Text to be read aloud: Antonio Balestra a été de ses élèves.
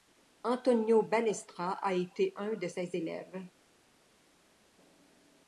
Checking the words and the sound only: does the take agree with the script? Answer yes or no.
no